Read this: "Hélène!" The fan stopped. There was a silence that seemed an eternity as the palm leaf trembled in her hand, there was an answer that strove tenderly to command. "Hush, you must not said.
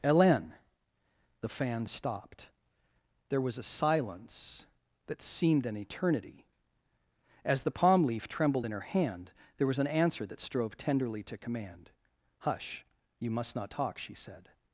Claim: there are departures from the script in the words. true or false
true